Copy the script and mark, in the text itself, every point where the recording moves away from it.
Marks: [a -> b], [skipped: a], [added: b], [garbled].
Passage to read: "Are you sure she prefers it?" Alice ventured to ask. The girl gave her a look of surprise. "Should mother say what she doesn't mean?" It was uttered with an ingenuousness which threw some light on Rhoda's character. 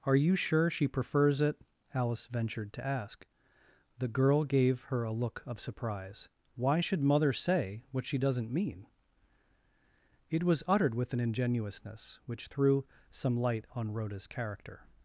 "Are you sure she prefers it?" Alice ventured to ask. The girl gave her a look of surprise. [added: Why] "Should mother say what she doesn't mean?" It was uttered with an ingenuousness which threw some light on Rhoda's character.